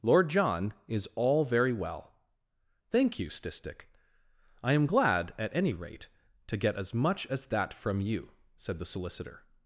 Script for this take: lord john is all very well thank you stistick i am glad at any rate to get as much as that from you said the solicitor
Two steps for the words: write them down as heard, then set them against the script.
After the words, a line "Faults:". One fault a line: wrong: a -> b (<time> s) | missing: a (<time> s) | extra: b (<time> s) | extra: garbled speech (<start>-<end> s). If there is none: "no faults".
lord john is all very well thank you stistick i am glad at any rate to get as much as that from you said the solicitor
Faults:
no faults